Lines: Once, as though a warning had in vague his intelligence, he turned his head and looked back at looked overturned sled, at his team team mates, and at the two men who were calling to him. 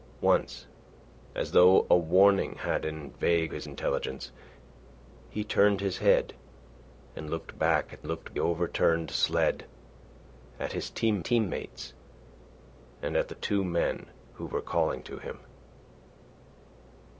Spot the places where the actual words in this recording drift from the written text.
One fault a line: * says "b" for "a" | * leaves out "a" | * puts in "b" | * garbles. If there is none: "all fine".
all fine